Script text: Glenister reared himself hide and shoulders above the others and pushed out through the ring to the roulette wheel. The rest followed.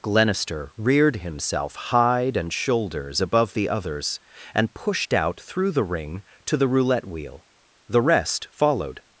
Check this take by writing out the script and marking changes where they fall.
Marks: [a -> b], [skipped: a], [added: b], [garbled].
Glenister reared himself hide and shoulders above the others and pushed out through the ring to the roulette wheel. The rest followed.